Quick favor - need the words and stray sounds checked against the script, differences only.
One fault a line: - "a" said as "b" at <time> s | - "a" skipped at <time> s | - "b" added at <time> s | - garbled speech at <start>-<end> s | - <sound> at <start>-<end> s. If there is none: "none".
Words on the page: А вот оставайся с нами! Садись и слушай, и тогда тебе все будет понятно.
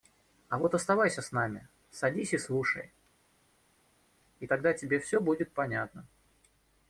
none